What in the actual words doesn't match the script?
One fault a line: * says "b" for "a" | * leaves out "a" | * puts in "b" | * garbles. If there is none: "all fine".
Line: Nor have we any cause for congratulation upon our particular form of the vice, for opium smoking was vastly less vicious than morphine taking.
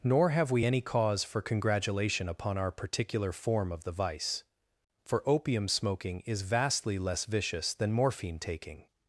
* says "is" for "was"